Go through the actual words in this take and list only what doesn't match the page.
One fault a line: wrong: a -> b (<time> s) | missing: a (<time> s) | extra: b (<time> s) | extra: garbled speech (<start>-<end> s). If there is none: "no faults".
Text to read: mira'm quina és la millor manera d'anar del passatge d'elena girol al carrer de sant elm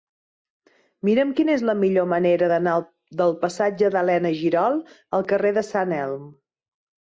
no faults